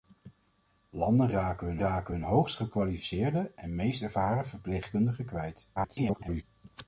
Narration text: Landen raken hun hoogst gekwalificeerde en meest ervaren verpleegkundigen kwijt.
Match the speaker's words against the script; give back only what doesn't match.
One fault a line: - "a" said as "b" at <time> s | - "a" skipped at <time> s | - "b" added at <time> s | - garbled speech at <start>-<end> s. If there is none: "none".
- "raken hun" added at 1.8 s
- garbled speech at 5.8-6.4 s